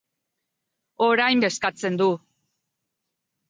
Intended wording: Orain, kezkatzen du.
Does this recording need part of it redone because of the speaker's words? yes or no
no